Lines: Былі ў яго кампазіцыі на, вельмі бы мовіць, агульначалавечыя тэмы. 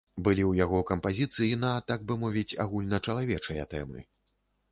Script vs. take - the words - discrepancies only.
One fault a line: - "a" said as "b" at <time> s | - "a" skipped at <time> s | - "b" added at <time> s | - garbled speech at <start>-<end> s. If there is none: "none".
- "вельмі" said as "так" at 1.9 s